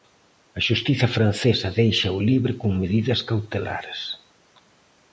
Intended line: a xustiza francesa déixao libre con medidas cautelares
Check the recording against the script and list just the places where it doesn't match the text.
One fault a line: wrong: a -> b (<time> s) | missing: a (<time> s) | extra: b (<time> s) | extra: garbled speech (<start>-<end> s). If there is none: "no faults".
no faults